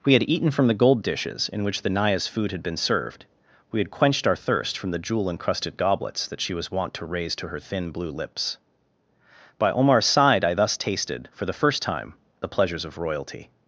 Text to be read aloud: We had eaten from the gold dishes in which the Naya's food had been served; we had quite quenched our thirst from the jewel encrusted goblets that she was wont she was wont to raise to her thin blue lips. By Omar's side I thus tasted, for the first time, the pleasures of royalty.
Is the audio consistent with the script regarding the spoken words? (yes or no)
no